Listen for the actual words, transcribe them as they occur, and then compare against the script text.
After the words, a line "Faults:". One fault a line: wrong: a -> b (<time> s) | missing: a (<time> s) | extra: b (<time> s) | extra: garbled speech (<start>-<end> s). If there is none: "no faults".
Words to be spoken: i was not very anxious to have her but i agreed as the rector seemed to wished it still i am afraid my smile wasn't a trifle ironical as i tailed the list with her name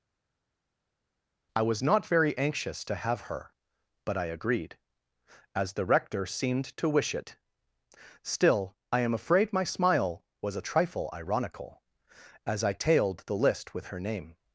i was not very anxious to have her but i agreed as the rector seemed to wish it still i am afraid my smile was a trifle ironical as i tailed the list with her name
Faults:
wrong: wished -> wish (6.9 s)
wrong: wasn't -> was (10.4 s)